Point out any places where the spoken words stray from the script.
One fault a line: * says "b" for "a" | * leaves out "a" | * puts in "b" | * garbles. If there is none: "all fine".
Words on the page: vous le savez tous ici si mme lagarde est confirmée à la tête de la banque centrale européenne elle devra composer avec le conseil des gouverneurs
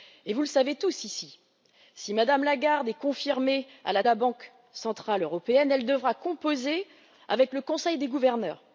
* leaves out "tête de"